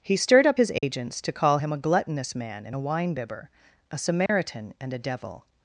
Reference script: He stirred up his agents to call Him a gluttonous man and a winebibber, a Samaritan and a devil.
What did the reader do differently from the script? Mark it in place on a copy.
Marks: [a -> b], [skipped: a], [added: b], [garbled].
He stirred up his agents to call Him a gluttonous man and a winebibber, a Samaritan and a devil.